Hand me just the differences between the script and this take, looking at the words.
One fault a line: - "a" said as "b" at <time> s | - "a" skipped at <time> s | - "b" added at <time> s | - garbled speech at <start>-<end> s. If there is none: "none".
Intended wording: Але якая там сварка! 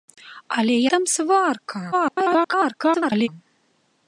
- "якая" skipped at 0.8 s
- garbled speech at 1.9-3.3 s